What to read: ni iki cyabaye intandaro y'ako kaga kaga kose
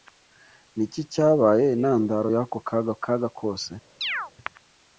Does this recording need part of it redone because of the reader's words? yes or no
no